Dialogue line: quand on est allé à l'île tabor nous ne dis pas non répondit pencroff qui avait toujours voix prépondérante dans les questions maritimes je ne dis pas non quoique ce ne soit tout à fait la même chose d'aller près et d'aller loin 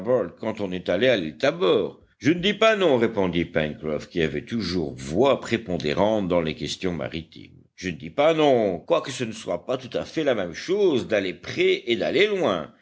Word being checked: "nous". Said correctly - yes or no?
no